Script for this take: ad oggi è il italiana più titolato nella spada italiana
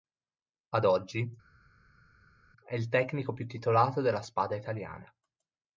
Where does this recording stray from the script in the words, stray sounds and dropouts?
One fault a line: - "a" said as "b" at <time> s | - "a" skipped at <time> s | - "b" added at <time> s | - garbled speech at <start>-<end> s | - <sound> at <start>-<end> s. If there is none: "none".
- "italiana" said as "tecnico" at 2.9 s
- "nella" said as "della" at 4.0 s